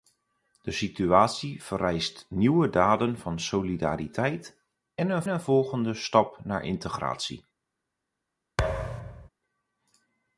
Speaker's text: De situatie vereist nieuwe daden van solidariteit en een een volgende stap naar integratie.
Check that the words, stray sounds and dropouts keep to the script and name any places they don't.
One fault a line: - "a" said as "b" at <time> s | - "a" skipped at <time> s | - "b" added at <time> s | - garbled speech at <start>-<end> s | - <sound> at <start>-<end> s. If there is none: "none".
- thud at 8.6-9.3 s